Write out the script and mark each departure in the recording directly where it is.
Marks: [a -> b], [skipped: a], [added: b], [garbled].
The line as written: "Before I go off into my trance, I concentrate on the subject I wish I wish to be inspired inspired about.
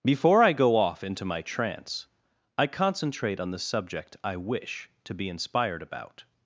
"Before I go off into my trance, I concentrate on the subject I wish [skipped: I wish] to be inspired [skipped: inspired] about.